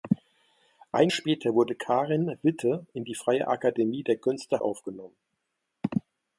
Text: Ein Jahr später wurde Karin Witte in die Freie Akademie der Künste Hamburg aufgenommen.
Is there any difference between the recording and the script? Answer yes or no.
yes